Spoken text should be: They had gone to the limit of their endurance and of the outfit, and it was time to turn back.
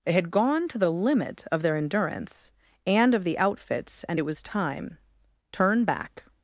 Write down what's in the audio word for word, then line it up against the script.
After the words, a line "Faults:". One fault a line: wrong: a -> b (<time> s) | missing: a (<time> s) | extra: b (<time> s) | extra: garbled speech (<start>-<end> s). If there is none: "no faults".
They had gone to the limit of their endurance and of the outfits, and it was time turn back.
Faults:
wrong: outfit -> outfits (3.4 s)
missing: to (5.0 s)